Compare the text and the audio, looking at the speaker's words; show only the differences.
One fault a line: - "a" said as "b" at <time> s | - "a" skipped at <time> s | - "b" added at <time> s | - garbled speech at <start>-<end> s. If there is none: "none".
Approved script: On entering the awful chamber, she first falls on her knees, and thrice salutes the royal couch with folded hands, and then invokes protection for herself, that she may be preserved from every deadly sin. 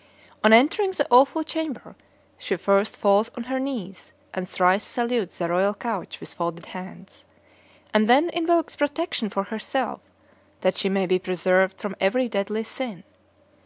none